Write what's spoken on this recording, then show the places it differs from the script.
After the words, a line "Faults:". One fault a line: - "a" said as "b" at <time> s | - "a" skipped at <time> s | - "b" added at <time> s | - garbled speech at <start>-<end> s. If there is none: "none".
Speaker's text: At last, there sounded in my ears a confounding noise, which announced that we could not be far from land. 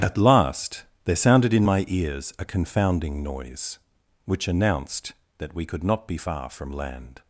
At last, there sounded in my ears a confounding noise, which announced that we could not be far from land.
Faults:
none